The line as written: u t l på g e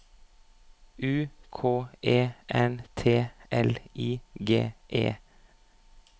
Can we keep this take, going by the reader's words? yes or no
no